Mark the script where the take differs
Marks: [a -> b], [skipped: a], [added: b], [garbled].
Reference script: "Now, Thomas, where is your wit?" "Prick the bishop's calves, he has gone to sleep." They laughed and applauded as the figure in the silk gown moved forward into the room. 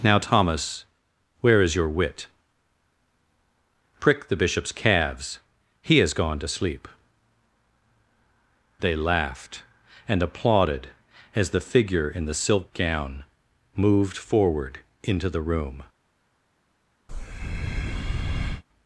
"Now, Thomas, where is your wit?" "Prick the bishop's calves, he has gone to sleep." They laughed and applauded as the figure in the silk gown moved forward into the room.